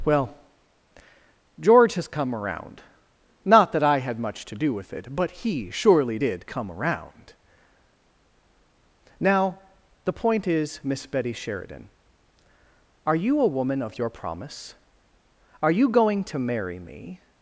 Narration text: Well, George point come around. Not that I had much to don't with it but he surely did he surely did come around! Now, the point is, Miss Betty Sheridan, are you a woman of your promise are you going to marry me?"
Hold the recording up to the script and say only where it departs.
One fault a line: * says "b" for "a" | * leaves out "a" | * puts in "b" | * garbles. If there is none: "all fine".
* says "has" for "point"
* says "do" for "don't"
* leaves out "he surely did"